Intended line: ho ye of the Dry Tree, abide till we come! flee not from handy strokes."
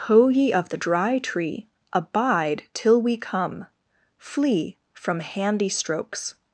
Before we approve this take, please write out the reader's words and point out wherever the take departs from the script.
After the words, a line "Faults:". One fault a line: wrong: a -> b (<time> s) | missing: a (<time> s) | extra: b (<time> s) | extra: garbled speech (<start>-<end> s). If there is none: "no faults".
ho ye of the Dry Tree, abide till we come! flee from handy strokes."
Faults:
missing: not (4.8 s)